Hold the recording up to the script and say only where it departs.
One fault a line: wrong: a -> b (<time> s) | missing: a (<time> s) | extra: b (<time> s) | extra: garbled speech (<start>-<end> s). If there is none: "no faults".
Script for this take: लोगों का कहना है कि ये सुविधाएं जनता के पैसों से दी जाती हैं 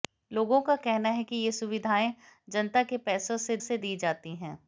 extra: से (3.6 s)